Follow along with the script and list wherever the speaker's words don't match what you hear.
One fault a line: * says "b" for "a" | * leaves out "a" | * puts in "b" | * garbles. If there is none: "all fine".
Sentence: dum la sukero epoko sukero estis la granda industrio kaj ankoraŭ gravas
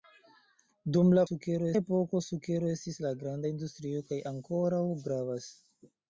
all fine